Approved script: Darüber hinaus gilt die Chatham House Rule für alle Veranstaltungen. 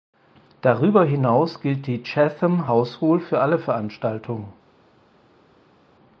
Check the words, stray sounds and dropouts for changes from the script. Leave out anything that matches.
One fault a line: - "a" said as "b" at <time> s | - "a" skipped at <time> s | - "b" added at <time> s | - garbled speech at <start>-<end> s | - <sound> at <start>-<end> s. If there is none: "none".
none